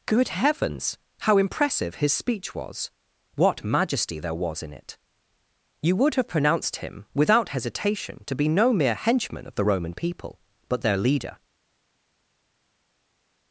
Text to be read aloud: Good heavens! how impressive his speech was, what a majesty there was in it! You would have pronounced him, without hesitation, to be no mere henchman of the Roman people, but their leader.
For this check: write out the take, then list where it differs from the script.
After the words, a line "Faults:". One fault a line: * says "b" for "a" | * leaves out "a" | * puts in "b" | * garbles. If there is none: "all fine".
Good heavens! how impressive his speech was, what majesty there was in it! You would have pronounced him, without hesitation, to be no mere henchman of the Roman people, but their leader.
Faults:
* leaves out "a"